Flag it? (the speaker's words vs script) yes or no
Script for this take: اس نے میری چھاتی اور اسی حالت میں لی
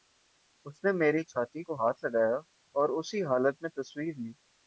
yes